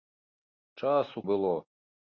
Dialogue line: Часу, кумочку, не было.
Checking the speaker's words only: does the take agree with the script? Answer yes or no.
no